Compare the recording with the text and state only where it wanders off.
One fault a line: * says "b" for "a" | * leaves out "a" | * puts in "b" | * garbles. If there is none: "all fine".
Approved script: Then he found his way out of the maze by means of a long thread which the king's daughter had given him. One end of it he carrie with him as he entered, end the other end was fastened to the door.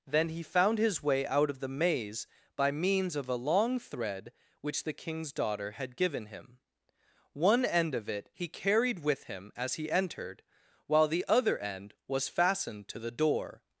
* says "carried" for "carrie"
* says "while" for "end"